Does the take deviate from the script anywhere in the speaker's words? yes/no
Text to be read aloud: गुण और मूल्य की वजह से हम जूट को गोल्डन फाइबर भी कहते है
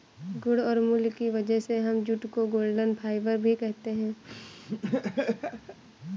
no